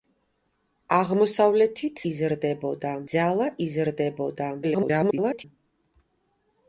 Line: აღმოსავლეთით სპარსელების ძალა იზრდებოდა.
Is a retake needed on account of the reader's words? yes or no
yes